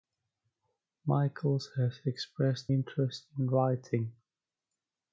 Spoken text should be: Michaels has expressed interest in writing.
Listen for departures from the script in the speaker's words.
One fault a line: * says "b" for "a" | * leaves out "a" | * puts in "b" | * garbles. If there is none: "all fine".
all fine